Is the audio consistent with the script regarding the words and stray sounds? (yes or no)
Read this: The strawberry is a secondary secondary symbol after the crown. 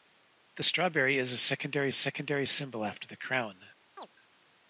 no